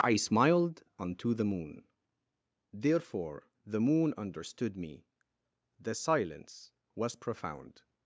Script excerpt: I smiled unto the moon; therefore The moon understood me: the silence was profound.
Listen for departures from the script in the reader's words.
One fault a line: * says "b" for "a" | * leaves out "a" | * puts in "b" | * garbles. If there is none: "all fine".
all fine